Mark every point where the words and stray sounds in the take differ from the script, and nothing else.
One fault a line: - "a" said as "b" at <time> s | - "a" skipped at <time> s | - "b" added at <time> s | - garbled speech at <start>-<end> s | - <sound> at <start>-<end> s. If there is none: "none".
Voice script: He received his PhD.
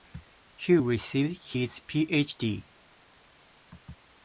none